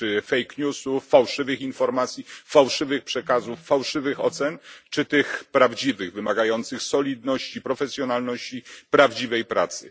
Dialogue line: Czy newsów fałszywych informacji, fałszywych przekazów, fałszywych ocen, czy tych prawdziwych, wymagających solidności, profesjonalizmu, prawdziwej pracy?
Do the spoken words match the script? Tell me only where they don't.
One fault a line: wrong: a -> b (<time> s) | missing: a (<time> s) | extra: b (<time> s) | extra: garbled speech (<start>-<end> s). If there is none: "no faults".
extra: fake (0.2 s)